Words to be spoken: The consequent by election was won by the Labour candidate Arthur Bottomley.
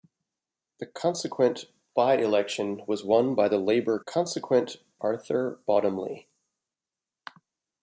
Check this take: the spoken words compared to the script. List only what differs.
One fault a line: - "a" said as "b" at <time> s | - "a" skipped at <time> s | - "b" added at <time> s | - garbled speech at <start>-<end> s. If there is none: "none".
- "candidate" said as "consequent" at 4.0 s